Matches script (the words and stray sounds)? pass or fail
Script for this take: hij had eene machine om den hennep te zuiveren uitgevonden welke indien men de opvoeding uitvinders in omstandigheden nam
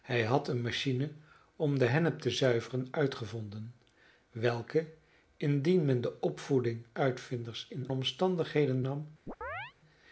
fail